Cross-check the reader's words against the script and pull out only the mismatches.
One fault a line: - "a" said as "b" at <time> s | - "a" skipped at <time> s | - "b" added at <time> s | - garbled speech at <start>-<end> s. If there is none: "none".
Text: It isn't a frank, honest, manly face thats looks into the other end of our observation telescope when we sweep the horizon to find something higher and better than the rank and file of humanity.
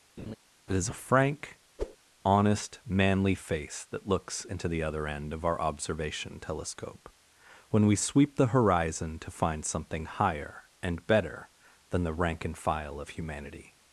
- "isn't" said as "is" at 0.7 s
- "thats" said as "that" at 3.9 s